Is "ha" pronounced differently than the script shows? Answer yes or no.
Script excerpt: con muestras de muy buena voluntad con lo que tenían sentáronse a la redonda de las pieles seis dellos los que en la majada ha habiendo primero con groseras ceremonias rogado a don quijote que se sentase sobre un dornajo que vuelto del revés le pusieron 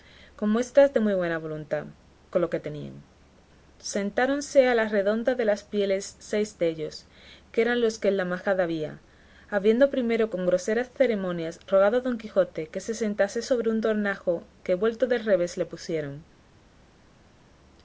yes